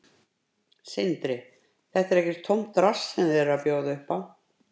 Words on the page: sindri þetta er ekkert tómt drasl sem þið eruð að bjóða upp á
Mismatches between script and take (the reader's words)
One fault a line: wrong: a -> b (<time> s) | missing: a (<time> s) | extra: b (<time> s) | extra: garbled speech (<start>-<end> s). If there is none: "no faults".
no faults